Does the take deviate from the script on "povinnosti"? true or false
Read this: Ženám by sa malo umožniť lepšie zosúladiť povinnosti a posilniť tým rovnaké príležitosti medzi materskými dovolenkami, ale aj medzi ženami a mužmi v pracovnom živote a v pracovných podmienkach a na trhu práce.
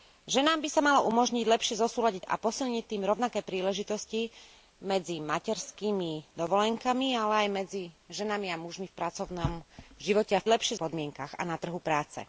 true